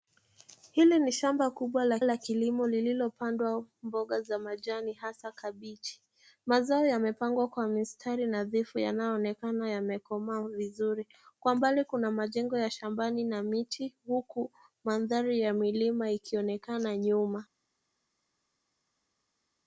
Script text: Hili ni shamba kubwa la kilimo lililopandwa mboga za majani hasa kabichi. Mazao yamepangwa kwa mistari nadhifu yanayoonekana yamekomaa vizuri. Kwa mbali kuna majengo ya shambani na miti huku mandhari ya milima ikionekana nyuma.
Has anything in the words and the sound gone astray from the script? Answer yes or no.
yes